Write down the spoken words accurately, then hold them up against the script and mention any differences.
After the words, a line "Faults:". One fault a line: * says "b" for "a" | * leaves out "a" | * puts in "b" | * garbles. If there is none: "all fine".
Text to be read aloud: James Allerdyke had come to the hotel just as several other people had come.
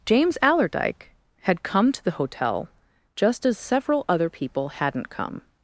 James Allerdyke had come to the hotel just as several other people hadn't come.
Faults:
* says "hadn't" for "had"